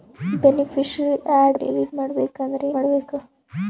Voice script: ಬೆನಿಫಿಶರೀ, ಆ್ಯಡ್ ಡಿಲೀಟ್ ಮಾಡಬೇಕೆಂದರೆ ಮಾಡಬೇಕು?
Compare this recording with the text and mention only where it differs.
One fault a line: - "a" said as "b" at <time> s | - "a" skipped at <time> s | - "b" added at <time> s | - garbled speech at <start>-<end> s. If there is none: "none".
none